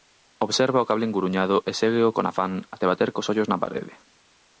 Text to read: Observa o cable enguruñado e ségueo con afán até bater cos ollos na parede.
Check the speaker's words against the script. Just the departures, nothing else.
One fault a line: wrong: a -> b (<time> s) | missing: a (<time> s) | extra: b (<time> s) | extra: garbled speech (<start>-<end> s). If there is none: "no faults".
no faults